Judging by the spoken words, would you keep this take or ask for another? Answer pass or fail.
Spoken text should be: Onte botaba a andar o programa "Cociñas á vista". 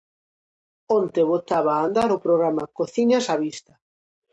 pass